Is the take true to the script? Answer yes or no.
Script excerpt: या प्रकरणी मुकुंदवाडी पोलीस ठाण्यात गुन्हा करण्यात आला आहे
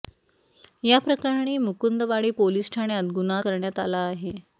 yes